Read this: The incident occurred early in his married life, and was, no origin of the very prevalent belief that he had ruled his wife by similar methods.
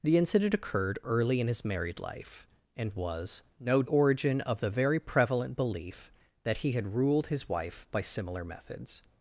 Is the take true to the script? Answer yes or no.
yes